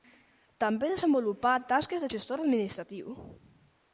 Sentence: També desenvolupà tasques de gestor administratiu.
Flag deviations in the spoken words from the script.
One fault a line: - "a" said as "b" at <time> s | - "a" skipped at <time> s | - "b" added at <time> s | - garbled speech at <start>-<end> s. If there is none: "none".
none